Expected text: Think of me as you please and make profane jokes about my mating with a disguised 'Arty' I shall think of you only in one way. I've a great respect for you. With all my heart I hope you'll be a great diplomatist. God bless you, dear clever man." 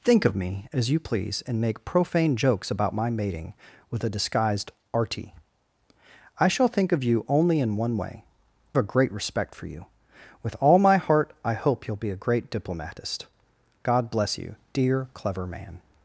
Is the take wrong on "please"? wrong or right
right